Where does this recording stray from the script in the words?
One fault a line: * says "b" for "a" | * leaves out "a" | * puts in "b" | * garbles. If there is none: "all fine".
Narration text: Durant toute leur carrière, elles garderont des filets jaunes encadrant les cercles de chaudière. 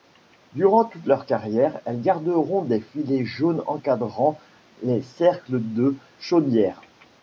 all fine